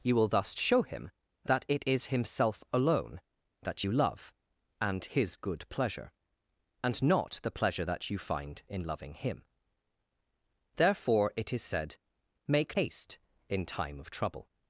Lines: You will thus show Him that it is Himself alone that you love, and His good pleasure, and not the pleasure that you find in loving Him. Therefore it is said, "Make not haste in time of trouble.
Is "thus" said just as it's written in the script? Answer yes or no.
yes